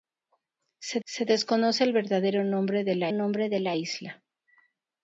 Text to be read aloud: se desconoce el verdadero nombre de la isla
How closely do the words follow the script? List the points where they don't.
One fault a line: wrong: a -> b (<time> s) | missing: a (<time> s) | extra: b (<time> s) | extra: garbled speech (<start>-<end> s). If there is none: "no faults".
extra: se (1.0 s)
extra: nombre de la (3.1 s)